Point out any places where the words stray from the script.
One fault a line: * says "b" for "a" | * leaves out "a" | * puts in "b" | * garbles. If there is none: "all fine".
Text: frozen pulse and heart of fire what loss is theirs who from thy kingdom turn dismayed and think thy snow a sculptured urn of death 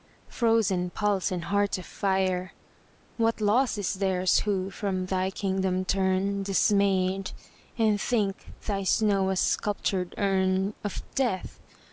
all fine